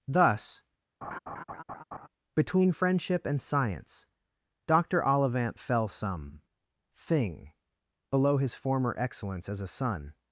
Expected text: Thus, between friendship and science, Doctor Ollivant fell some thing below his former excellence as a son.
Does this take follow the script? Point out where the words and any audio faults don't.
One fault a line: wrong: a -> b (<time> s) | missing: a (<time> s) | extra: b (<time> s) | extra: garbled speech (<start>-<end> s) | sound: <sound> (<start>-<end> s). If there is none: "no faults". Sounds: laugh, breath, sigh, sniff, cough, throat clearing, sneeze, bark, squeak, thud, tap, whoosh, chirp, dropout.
sound: laugh (1.0-2.1 s)